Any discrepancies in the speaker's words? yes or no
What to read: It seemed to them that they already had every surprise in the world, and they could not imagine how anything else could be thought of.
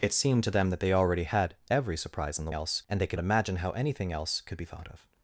yes